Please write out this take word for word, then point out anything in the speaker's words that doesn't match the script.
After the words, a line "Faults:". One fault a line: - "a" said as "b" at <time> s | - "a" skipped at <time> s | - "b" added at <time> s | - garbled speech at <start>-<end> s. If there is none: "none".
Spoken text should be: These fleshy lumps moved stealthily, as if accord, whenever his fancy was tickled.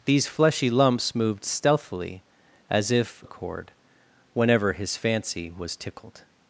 These fleshy lumps moved stealthily, as if accord, whenever his fancy was tickled.
Faults:
none